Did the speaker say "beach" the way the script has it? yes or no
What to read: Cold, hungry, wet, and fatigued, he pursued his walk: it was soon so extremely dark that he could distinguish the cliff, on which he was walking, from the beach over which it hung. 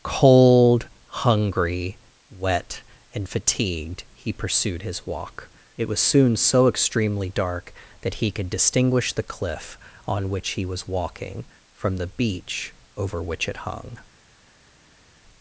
yes